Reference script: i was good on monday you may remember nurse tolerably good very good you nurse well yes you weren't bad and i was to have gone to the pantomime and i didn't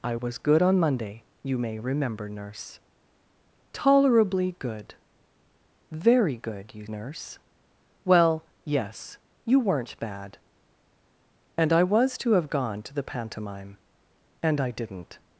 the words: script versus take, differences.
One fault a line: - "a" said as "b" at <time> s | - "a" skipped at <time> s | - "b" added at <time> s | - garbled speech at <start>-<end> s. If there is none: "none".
none